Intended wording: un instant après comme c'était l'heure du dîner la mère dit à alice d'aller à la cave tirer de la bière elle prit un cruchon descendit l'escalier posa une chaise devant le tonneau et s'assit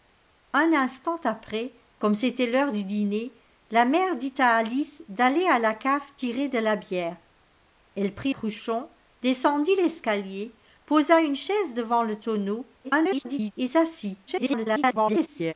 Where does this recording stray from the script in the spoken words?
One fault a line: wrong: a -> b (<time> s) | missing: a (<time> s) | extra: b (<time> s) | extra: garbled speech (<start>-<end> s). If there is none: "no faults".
missing: un (8.3 s)
extra: garbled speech (12.8-13.5 s)
extra: garbled speech (14.3-15.5 s)